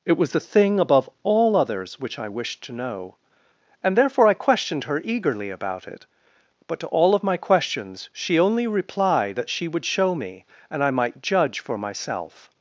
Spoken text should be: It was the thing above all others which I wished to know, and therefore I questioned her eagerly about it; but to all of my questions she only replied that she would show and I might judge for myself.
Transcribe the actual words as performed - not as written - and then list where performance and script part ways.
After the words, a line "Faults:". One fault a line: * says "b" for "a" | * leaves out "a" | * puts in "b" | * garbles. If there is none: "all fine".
It was the thing above all others which I wished to know, and therefore I questioned her eagerly about it; but to all of my questions she only replied that she would show me, and I might judge for myself.
Faults:
* puts in "me"